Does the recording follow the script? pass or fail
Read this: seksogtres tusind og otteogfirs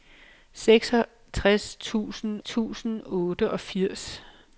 fail